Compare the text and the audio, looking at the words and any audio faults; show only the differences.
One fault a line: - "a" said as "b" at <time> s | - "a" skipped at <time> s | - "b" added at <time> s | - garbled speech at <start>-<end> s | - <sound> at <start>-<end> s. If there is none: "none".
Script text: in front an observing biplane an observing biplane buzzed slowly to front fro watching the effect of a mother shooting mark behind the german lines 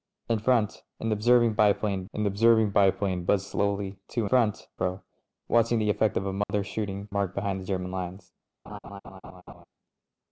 - dropout at 6.4-6.5 s
- laugh at 8.7-9.7 s